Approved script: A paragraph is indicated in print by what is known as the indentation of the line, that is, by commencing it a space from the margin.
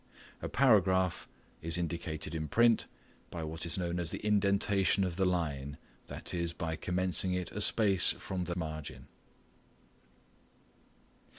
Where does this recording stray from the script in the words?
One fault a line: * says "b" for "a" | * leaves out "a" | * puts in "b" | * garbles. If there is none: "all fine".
all fine